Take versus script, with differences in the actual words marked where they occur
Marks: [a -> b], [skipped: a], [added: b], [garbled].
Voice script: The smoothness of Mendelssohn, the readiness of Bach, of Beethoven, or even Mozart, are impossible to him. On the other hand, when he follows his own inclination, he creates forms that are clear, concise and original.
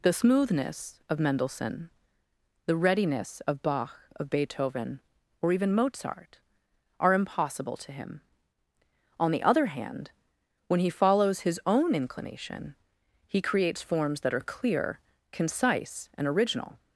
The smoothness of Mendelssohn, the readiness of Bach, of Beethoven, or even Mozart, are impossible to him. On the other hand, when he follows his own inclination, he creates forms that are clear, concise and original.